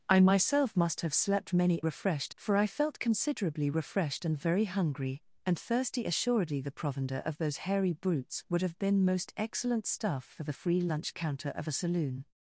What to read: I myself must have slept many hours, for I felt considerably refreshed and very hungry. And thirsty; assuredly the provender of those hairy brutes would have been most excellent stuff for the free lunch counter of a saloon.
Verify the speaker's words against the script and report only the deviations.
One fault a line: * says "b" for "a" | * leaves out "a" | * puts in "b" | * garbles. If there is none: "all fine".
* says "refreshed" for "hours"